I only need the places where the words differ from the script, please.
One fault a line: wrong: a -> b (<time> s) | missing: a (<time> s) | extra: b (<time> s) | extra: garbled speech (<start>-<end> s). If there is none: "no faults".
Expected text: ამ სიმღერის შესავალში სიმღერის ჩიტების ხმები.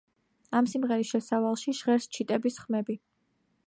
wrong: სიმღერის -> ჟღერს (1.8 s)